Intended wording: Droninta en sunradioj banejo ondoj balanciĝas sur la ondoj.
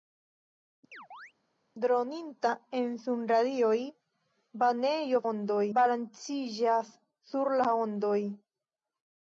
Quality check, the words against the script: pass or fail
pass